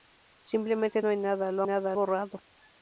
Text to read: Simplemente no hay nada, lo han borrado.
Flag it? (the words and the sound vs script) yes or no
yes